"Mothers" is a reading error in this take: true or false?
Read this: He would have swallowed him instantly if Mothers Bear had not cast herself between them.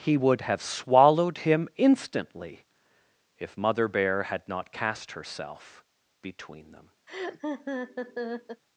true